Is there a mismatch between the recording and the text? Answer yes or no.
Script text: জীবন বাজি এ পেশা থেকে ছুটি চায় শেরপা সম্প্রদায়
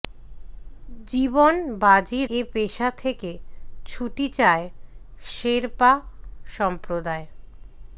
no